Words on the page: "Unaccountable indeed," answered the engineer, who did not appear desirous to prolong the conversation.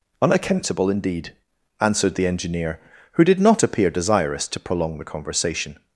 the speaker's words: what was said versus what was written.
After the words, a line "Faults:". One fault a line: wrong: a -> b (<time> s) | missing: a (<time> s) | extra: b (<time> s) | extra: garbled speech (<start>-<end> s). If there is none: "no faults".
"Unaccountable indeed," answered the engineer, who did not appear desirous to prolong the conversation.
Faults:
no faults